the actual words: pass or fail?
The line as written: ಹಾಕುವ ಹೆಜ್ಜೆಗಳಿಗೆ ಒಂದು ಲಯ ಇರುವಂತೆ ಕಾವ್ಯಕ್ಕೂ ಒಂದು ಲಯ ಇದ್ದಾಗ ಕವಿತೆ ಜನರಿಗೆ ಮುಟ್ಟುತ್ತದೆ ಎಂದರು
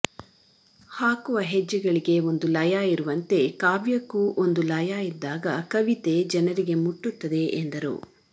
pass